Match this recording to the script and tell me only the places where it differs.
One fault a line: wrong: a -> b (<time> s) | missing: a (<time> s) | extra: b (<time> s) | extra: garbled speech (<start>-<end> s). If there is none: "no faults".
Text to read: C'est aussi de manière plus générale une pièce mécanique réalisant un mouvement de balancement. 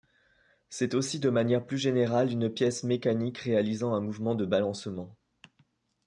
no faults